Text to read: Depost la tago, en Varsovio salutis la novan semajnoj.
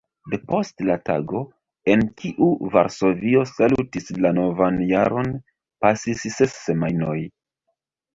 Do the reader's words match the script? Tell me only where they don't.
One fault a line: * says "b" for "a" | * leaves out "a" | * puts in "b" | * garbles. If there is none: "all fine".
* puts in "kiu"
* puts in "jaron pasis ses"